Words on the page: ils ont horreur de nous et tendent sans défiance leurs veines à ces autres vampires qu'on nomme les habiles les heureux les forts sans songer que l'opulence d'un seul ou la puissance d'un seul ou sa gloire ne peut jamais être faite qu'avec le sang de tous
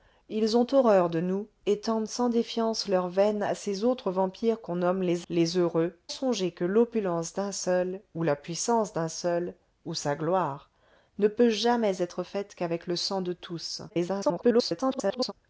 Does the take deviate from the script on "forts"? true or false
true